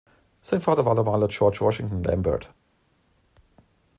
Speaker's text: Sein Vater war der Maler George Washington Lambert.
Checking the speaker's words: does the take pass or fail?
pass